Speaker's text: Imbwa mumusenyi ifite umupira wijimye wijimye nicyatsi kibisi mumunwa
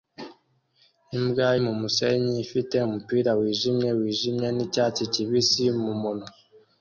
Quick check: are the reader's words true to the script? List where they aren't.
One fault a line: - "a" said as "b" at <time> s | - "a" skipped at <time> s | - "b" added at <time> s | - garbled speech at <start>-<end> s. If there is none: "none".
none